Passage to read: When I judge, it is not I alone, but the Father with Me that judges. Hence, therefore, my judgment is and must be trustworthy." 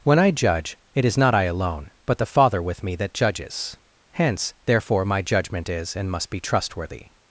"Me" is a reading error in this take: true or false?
false